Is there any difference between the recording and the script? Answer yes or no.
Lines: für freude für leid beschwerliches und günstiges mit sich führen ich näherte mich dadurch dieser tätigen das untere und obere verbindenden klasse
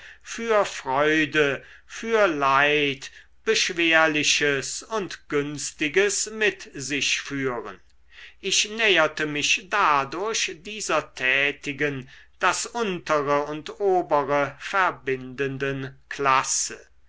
no